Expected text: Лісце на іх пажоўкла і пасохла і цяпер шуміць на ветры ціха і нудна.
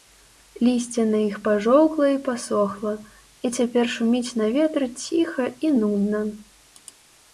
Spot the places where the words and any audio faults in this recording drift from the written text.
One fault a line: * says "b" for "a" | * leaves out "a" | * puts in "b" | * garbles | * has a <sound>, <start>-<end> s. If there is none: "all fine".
all fine